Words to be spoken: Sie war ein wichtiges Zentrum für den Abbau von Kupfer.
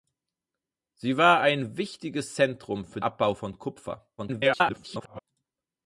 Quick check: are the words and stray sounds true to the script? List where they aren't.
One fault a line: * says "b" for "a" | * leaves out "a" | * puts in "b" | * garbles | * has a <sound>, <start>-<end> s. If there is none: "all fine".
* leaves out "den"
* garbles